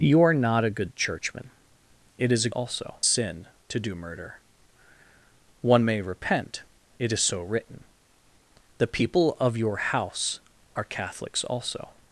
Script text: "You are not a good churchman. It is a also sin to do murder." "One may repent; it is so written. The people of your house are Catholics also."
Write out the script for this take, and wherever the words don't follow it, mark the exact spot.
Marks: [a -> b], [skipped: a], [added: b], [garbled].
"You are not a good churchman. It is a also sin to do murder." "One may repent; it is so written. The people of your house are Catholics also."